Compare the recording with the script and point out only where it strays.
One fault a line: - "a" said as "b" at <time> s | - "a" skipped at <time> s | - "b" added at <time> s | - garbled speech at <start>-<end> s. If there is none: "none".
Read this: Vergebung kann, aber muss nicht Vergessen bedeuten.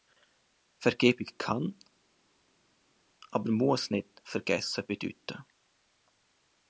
none